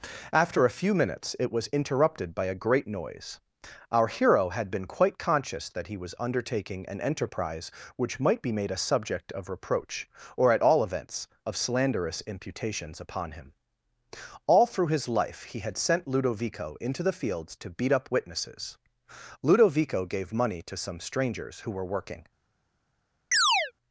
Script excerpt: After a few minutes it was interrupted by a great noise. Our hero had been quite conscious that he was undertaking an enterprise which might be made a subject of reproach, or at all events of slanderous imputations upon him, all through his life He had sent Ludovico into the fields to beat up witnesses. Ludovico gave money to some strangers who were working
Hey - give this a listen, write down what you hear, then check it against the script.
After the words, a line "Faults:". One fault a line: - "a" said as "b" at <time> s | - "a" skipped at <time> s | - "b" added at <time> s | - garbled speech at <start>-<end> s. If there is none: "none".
After a few minutes it was interrupted by a great noise. Our hero had been quite conscious that he was undertaking an enterprise which might be made a subject of reproach, or at all events of slanderous imputations upon him, all through his life He had sent Ludovico into the fields to beat up witnesses. Ludovico gave money to some strangers who were working
Faults:
none